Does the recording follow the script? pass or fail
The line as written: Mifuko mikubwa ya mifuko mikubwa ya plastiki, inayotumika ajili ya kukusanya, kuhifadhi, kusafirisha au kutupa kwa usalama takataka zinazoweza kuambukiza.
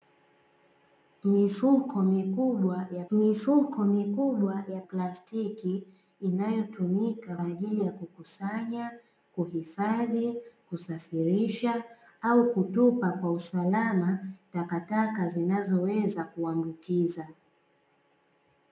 pass